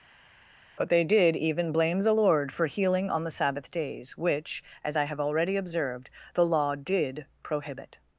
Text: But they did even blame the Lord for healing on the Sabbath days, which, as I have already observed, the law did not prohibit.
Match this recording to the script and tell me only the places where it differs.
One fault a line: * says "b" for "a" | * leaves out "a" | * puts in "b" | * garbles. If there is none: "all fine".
* leaves out "not"